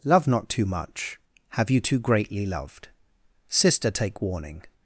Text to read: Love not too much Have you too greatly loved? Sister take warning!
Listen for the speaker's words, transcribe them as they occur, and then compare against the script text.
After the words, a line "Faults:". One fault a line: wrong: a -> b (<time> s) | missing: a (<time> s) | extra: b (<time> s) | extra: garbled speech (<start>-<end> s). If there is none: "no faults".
Love not too much Have you too greatly loved? Sister take warning!
Faults:
no faults